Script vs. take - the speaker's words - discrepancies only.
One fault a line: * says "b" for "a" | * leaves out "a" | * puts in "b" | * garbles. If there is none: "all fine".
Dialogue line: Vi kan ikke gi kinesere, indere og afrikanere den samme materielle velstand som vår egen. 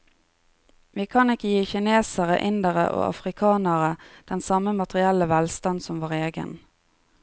all fine